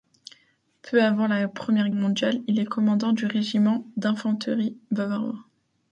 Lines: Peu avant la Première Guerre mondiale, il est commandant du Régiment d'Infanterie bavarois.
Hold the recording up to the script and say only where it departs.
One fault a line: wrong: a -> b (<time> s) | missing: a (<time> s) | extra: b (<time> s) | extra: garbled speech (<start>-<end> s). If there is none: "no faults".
missing: Guerre (1.9 s)